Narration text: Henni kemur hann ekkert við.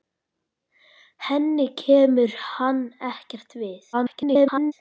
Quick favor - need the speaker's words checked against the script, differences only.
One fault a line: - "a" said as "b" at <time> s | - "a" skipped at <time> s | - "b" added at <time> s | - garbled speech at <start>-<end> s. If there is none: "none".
- garbled speech at 3.9-4.7 s